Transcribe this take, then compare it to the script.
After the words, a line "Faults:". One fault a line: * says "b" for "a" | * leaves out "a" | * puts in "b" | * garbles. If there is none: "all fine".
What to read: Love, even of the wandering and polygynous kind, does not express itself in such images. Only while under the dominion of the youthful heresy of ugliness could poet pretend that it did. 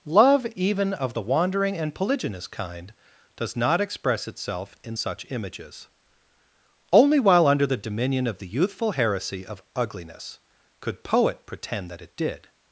Love, even of the wandering and polygynous kind, does not express itself in such images. Only while under the dominion of the youthful heresy of ugliness could poet pretend that it did.
Faults:
all fine